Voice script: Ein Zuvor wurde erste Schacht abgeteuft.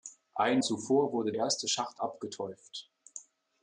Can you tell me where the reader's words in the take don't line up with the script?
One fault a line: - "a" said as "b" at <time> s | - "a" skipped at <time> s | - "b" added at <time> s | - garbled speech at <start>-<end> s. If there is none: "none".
none